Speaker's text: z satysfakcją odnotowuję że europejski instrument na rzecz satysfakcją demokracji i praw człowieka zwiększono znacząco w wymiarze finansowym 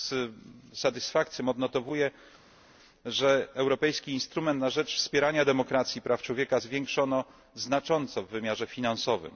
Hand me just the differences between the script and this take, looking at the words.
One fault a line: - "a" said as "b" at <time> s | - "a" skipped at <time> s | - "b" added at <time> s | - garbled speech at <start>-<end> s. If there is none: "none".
- "satysfakcją" said as "wspierania" at 5.0 s